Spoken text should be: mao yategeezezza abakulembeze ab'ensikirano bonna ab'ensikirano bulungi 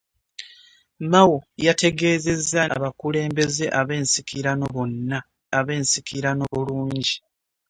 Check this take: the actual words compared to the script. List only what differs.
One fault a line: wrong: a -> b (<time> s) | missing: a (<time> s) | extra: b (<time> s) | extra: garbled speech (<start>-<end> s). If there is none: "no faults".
no faults